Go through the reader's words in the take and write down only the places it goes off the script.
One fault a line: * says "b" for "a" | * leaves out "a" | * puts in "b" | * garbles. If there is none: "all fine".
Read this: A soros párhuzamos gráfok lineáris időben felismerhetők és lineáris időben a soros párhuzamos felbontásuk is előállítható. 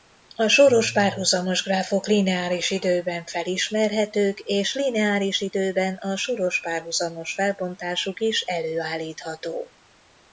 all fine